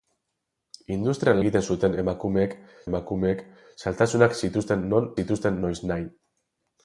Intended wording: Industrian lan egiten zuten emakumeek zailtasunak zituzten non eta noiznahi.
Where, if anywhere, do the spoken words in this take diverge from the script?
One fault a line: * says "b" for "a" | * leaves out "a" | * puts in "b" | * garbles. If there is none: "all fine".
* leaves out "lan"
* puts in "emakumeek"
* says "zituzten" for "eta"